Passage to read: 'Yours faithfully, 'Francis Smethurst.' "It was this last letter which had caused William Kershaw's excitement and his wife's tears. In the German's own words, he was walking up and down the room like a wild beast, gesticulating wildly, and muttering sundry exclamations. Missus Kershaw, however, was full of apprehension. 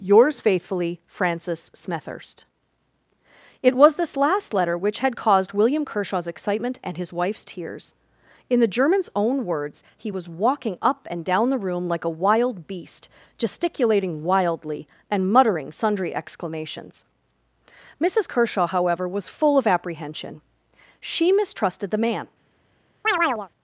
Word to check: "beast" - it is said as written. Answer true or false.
true